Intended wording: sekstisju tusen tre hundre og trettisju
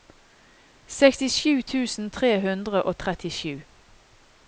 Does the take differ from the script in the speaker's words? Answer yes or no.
no